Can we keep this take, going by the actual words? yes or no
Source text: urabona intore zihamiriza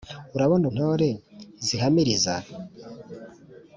yes